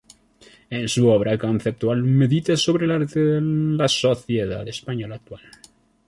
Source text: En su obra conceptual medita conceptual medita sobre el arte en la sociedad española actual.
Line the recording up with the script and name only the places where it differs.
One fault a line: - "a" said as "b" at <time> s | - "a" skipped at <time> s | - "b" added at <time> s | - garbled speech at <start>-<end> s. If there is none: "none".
- "conceptual medita" skipped at 2.6 s